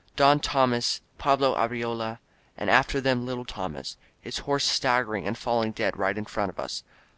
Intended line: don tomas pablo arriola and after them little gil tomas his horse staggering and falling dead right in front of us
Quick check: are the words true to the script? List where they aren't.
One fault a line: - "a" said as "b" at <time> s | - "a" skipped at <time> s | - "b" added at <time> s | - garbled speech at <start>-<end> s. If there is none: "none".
- "gil" skipped at 3.4 s